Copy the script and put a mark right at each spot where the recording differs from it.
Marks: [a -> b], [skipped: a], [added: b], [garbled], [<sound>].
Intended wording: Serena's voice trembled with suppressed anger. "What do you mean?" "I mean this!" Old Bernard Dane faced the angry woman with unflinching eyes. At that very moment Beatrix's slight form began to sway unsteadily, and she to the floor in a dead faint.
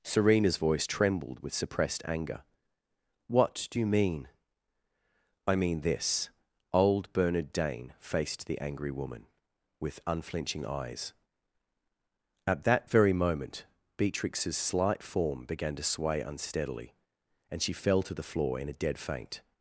Serena's voice trembled with suppressed anger. "What do you mean?" "I mean this!" Old Bernard Dane faced the angry woman with unflinching eyes. At that very moment Beatrix's slight form began to sway unsteadily, and she [added: fell] to the floor in a dead faint.